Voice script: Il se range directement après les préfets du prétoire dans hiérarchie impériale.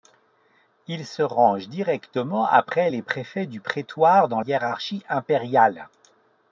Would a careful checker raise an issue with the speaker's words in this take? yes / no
no